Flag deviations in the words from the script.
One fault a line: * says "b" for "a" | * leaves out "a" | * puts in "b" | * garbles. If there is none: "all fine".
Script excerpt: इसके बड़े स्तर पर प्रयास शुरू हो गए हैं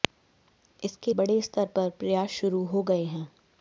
all fine